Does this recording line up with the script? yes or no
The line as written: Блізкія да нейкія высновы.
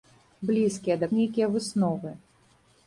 yes